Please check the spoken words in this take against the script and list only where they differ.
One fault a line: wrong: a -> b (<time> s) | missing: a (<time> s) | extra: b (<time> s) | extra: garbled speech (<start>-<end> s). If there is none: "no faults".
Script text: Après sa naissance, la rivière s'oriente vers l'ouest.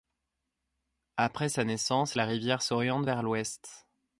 no faults